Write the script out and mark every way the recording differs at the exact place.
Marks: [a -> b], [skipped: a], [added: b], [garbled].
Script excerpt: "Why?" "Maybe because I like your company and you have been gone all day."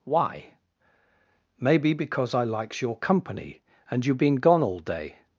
"Why?" "Maybe because I [like -> likes] your company and you [skipped: have] been gone all day."